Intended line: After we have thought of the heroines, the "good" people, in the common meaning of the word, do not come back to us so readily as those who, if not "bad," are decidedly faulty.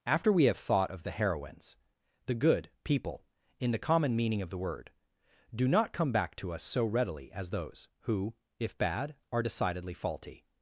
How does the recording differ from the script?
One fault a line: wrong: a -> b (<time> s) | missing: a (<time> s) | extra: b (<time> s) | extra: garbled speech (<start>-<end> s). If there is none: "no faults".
missing: not (8.8 s)